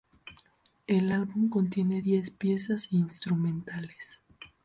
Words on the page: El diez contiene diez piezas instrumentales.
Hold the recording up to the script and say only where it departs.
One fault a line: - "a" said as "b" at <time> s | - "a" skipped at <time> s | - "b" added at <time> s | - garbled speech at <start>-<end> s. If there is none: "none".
- "diez" said as "álbum" at 1.1 s